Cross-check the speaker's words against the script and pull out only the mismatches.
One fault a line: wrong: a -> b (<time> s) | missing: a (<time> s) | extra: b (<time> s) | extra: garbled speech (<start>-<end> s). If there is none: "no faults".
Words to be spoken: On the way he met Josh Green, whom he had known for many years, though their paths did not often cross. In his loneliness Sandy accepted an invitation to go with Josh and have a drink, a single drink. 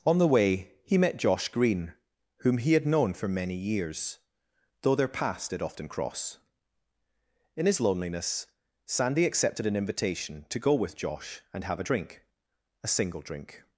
missing: not (5.6 s)